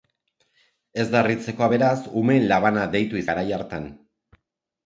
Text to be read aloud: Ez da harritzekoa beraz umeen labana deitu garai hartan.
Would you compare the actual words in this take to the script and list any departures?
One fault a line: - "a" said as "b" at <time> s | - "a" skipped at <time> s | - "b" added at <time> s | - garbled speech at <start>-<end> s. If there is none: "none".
none